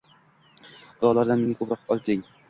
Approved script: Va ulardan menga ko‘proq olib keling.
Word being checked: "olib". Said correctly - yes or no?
yes